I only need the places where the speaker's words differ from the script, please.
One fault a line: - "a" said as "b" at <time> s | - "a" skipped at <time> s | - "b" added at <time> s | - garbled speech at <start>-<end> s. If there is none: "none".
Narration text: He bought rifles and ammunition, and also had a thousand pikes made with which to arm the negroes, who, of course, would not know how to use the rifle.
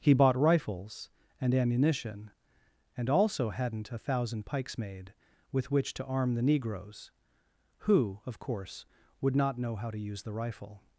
- "had" said as "hadn't" at 3.5 s